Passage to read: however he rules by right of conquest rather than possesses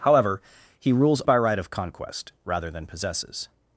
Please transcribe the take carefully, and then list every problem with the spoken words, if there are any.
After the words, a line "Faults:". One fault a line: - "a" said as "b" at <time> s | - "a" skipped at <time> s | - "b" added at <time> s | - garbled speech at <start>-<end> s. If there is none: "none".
however he rules by right of conquest rather than possesses
Faults:
none